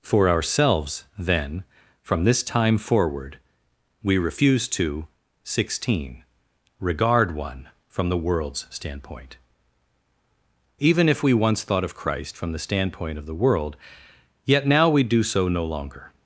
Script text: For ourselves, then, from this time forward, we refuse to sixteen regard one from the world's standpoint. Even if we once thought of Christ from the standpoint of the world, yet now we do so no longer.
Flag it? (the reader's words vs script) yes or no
no